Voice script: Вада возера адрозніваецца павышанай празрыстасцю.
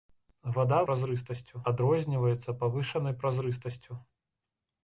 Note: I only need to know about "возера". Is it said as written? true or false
false